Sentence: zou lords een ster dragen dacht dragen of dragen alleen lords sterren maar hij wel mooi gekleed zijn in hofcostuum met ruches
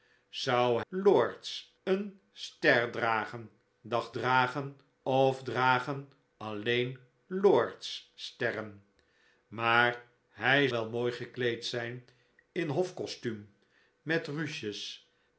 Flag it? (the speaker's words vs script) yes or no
no